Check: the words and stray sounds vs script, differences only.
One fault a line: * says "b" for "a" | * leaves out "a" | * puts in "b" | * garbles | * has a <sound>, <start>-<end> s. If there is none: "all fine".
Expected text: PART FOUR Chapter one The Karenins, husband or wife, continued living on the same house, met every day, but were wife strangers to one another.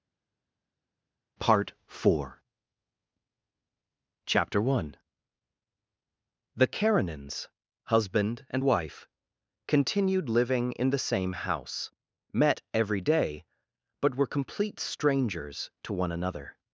* says "and" for "or"
* says "in" for "on"
* says "complete" for "wife"